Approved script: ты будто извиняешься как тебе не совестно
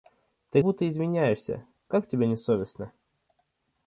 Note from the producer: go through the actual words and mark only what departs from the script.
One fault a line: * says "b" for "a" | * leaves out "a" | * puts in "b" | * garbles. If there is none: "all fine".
all fine